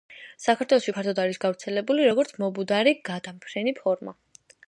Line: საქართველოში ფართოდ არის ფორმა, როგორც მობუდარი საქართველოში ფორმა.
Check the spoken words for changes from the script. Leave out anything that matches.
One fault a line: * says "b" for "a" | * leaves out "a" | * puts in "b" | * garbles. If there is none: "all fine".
* says "გავრცელებული" for "ფორმა"
* says "გადამფრენი" for "საქართველოში"